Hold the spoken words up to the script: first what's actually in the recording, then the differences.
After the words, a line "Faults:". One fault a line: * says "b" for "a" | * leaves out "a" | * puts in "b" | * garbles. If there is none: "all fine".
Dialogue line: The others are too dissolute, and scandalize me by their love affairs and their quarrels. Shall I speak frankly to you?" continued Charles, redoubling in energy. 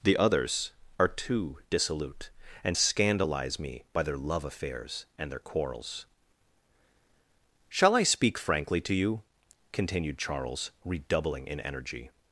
The others are too dissolute, and scandalize me by their love affairs and their quarrels. Shall I speak frankly to you?" continued Charles, redoubling in energy.
Faults:
all fine